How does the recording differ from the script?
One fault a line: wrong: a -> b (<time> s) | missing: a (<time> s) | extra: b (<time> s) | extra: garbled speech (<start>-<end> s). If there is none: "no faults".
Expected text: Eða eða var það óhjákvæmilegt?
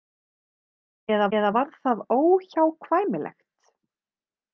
no faults